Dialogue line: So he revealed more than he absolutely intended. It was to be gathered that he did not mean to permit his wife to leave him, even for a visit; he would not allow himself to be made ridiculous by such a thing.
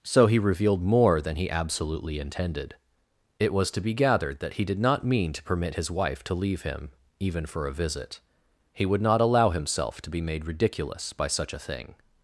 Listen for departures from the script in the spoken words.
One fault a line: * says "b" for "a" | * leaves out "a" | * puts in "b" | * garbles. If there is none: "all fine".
all fine